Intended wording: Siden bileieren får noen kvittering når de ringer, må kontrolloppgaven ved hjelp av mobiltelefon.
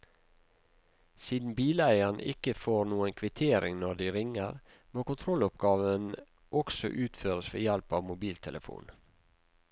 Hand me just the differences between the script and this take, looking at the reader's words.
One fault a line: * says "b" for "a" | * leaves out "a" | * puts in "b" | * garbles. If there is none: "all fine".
* puts in "ikke"
* puts in "også utføres"